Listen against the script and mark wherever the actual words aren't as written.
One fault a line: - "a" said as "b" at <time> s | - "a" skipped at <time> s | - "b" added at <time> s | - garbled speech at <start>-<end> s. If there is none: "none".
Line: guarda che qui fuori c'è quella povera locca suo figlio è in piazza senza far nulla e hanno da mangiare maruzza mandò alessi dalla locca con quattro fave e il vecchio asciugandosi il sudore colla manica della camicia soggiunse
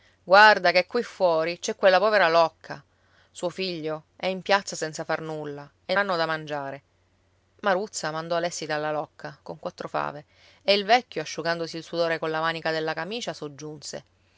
none